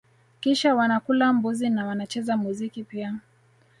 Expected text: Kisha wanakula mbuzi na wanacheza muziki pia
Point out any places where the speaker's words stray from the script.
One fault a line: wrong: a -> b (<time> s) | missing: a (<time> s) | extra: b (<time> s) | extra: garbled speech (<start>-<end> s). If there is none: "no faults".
no faults